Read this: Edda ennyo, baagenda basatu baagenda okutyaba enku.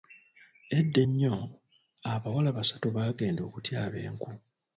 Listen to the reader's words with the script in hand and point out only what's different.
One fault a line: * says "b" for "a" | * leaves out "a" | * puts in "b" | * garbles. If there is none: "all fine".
* says "abawala" for "baagenda"